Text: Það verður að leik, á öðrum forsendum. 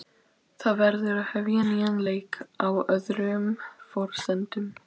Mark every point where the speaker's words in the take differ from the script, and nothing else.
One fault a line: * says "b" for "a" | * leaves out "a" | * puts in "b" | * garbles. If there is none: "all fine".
* puts in "hefja nýjan"